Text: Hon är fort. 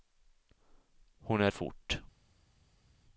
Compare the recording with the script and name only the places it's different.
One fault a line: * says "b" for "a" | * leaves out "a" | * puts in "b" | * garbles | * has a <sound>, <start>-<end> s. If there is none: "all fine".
all fine